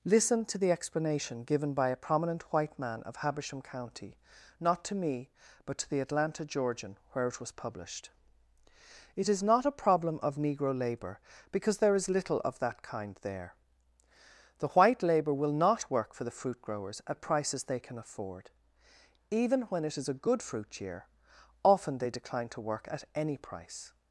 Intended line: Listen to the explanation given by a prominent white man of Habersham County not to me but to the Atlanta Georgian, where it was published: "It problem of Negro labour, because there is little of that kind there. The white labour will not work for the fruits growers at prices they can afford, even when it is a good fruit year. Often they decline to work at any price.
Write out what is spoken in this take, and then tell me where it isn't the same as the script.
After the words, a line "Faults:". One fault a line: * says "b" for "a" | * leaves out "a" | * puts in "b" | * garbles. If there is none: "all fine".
Listen to the explanation given by a prominent white man of Habersham County not to me but to the Atlanta Georgian, where it was published: "It is not a problem of Negro labour, because there is little of that kind there. The white labour will not work for the fruit growers at prices they can afford, even when it is a good fruit year. Often they decline to work at any price.
Faults:
* puts in "is not a"
* says "fruit" for "fruits"